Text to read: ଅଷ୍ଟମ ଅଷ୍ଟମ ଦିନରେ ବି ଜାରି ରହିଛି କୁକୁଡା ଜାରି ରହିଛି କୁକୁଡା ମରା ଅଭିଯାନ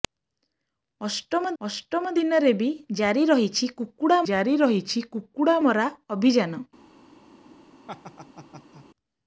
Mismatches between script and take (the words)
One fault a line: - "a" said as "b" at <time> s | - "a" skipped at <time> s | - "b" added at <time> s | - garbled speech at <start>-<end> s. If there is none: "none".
none